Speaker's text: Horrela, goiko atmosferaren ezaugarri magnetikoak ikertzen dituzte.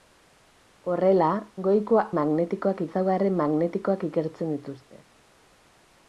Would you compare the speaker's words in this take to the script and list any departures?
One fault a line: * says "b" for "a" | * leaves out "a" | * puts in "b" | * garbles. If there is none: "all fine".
* says "magnetikoak" for "atmosferaren"